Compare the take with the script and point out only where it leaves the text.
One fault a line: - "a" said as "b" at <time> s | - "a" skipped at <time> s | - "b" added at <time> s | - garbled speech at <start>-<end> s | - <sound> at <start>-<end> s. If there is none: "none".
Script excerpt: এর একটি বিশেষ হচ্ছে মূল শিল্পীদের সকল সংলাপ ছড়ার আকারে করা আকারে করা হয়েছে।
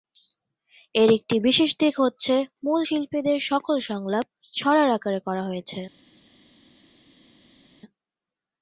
- "দিক" added at 1.8 s
- "আকারে করা" skipped at 5.4 s